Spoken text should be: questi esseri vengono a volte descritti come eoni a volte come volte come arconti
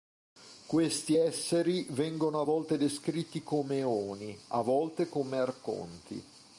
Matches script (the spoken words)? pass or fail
fail